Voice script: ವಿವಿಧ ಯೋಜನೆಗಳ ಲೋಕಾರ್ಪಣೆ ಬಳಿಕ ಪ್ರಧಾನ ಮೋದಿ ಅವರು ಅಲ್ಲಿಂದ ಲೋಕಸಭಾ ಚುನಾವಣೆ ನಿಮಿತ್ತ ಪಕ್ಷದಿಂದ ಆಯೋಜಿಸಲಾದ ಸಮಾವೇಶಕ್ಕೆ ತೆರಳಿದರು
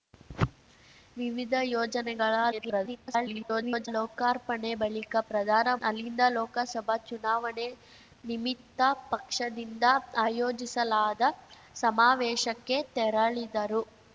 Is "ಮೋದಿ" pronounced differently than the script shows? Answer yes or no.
yes